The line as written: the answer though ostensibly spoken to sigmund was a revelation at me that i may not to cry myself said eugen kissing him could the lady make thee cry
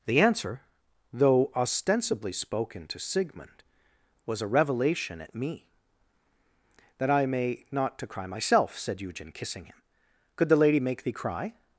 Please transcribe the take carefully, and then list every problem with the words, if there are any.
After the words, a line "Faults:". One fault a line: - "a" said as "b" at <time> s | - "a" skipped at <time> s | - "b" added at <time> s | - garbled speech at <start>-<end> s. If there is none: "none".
the answer though ostensibly spoken to sigmund was a revelation at me that i may not to cry myself said eugen kissing him could the lady make thee cry
Faults:
none